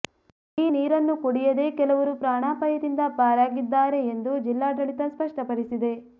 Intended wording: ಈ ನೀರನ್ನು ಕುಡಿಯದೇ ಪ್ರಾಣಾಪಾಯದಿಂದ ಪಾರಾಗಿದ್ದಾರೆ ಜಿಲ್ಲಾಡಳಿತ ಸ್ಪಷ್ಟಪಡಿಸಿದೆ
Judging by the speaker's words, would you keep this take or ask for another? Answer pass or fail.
fail